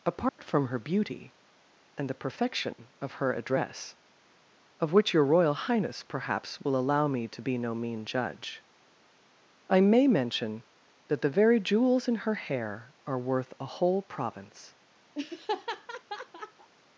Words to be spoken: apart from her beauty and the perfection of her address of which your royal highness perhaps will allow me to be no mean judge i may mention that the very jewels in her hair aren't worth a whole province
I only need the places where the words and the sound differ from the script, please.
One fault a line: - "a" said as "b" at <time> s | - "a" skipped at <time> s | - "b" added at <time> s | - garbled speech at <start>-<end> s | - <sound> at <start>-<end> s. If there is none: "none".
- dropout at 0.3-0.4 s
- "aren't" said as "are" at 13.1 s
- laugh at 15.1-16.7 s